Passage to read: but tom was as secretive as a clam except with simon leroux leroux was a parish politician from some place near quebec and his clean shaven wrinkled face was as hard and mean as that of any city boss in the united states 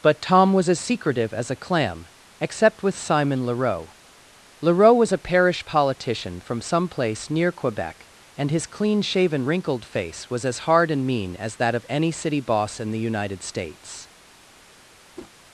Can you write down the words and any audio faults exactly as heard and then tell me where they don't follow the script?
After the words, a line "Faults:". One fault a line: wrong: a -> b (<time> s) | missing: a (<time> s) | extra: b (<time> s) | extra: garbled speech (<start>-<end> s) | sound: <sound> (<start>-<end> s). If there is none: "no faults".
but tom was as secretive as a clam except with simon leroux leroux was a parish politician from some place near quebec and his clean shaven wrinkled face was as hard and mean as that of any city boss in the united states
Faults:
sound: whoosh (15.2-15.3 s)